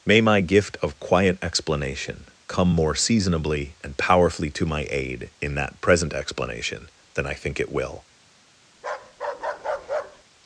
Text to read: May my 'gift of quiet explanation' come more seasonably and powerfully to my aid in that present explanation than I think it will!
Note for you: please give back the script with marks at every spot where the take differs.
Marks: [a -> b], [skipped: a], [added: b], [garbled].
May my 'gift of quiet explanation' come more seasonably and powerfully to my aid in that present explanation than I think it will!